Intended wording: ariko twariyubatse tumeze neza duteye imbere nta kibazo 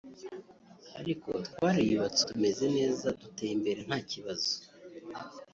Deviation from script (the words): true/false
false